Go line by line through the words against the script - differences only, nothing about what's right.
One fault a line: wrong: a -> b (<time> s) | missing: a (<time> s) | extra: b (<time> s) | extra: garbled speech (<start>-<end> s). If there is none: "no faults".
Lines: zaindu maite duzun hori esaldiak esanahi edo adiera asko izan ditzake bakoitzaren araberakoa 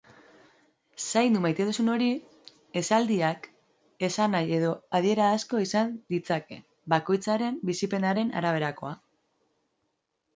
extra: bizipenaren (7.7 s)